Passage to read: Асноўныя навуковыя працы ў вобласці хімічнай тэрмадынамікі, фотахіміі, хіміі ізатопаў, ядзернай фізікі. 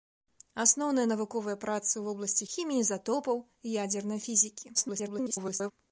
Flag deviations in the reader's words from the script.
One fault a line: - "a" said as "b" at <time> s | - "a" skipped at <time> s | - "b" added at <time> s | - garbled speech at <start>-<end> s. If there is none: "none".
- "хімічнай тэрмадынамікі фотахіміі" skipped at 2.5 s
- garbled speech at 4.7-5.7 s